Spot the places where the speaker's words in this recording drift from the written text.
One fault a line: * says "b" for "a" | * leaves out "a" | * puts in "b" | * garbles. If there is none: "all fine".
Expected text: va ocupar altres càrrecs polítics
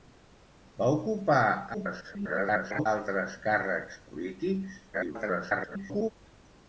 * garbles
* garbles